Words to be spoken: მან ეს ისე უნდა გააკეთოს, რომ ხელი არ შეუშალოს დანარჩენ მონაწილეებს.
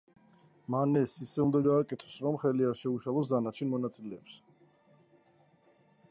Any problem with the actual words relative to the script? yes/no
no